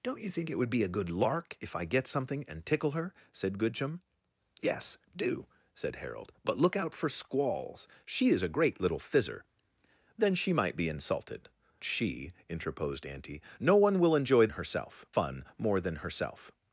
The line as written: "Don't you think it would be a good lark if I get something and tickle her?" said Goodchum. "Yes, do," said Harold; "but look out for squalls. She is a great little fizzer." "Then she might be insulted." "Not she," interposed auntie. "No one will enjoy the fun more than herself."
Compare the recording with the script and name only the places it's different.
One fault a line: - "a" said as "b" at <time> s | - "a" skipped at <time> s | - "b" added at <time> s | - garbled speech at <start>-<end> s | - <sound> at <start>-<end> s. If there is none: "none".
- "Not" skipped at 11.5 s
- "the" said as "herself" at 14.5 s